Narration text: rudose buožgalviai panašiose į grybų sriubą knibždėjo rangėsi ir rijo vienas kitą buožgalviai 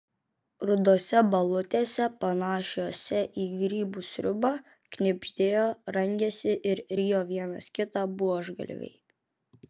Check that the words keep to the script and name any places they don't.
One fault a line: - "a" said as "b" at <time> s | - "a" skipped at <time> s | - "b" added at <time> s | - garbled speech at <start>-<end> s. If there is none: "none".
- "buožgalviai" said as "balutėse" at 1.3 s